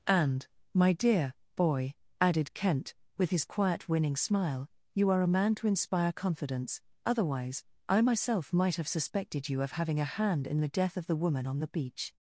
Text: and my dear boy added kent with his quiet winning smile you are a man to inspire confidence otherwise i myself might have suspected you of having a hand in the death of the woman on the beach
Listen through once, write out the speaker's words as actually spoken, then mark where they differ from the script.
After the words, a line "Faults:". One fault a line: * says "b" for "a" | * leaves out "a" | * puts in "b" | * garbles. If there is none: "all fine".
and my dear boy added kent with his quiet winning smile you are a man to inspire confidence otherwise i myself might have suspected you of having a hand in the death of the woman on the beach
Faults:
all fine